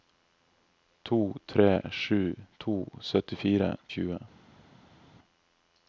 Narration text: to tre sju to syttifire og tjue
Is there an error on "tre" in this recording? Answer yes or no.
no